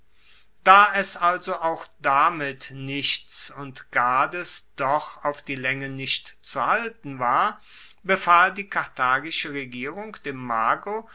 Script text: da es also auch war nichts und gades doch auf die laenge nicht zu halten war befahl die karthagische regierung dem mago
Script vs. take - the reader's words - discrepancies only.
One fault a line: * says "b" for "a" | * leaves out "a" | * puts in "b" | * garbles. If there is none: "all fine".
* says "damit" for "war"